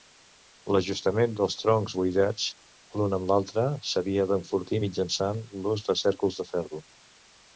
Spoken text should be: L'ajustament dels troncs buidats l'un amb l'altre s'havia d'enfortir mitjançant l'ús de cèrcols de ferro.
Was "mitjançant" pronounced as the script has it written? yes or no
yes